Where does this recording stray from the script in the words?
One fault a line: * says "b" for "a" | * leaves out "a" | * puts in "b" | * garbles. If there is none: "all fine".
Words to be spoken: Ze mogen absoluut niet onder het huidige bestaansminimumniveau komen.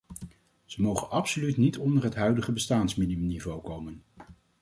all fine